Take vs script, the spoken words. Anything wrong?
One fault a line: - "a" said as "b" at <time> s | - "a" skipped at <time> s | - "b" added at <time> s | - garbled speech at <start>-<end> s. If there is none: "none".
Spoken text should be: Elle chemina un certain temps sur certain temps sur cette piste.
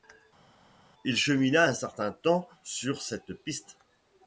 - "Elle" said as "Il" at 1.0 s
- "certain temps sur" skipped at 3.0 s